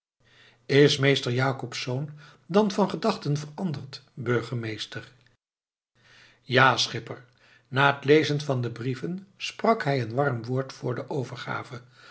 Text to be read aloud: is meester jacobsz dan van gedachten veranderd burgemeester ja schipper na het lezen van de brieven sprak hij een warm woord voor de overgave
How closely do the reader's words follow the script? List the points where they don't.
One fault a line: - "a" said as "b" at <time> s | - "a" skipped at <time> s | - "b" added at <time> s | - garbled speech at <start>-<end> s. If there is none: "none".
none